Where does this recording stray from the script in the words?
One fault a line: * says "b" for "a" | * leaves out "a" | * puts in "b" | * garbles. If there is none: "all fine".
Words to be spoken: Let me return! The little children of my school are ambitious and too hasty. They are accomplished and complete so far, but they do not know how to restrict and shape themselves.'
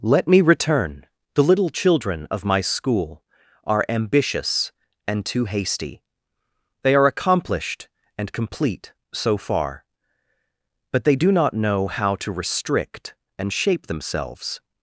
all fine